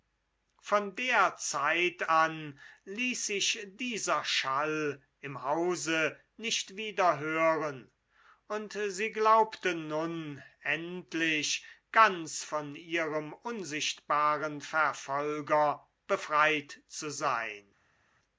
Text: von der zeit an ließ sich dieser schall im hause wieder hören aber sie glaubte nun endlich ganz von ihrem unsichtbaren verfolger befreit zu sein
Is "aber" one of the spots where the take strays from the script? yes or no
yes